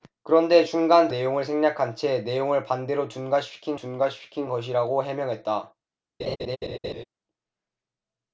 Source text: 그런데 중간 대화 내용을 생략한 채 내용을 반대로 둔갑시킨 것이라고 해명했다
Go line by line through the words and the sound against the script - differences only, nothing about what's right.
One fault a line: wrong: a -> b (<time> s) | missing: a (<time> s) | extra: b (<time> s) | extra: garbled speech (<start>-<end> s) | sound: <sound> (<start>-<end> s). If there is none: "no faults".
missing: 대화 (1.1 s)
extra: 둔갑시킨 (3.8 s)
sound: laugh (6.2-7.0 s)